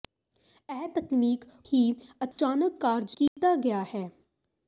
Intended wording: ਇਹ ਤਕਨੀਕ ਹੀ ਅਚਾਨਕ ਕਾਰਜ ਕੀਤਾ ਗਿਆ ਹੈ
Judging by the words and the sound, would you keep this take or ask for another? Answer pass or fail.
fail